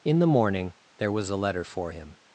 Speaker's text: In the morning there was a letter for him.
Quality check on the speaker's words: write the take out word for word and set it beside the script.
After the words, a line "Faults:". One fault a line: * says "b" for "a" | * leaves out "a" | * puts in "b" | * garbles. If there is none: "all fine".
In the morning there was a letter for him.
Faults:
all fine